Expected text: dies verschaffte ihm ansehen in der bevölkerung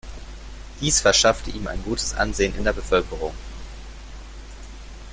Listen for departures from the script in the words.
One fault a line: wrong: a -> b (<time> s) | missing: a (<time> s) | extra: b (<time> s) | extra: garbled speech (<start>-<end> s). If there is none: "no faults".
extra: ein gutes (1.7 s)